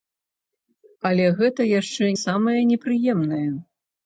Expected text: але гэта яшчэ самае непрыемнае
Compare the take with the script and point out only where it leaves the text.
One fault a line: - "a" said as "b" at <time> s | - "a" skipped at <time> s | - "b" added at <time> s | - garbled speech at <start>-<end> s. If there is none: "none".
none